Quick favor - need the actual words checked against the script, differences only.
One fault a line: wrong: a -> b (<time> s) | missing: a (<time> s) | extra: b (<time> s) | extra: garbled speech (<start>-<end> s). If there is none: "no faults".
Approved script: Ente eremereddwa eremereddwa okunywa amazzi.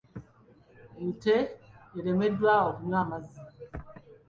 missing: eremereddwa (2.5 s)